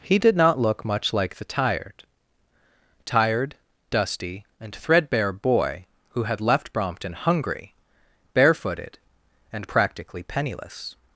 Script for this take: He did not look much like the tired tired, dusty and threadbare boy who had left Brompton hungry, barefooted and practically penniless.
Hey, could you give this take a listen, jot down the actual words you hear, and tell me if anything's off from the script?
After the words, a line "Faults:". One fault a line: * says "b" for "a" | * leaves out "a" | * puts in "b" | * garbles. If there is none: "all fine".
He did not look much like the tired tired, dusty and threadbare boy who had left Brompton hungry, barefooted and practically penniless.
Faults:
all fine